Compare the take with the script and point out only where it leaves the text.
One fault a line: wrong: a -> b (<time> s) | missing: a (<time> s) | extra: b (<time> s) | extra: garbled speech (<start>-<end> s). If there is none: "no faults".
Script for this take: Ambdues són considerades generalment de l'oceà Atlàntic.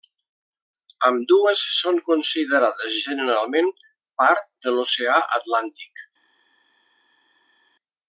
extra: part (4.2 s)